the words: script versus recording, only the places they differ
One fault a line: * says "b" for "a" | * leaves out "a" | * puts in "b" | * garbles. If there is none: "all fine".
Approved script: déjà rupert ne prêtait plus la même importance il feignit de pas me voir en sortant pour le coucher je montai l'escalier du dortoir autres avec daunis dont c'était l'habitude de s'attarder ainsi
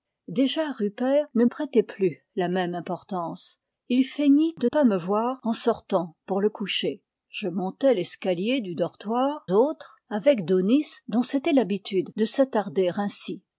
all fine